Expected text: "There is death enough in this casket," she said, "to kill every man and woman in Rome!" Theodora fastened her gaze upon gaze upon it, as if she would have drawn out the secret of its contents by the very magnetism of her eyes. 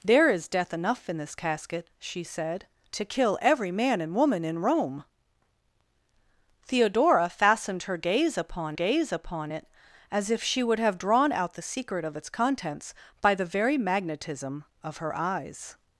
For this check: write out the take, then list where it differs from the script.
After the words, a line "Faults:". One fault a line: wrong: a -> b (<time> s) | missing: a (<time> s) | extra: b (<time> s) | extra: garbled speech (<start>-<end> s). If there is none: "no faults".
"There is death enough in this casket," she said, "to kill every man and woman in Rome!" Theodora fastened her gaze upon gaze upon it, as if she would have drawn out the secret of its contents by the very magnetism of her eyes.
Faults:
no faults